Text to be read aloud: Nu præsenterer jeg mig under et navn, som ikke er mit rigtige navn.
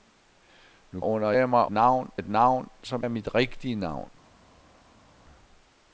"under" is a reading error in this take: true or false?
true